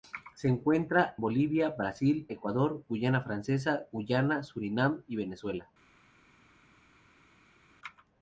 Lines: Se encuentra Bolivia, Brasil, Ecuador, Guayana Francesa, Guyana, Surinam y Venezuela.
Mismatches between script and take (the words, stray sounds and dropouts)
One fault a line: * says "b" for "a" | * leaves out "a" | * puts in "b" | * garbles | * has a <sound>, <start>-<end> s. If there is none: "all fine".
all fine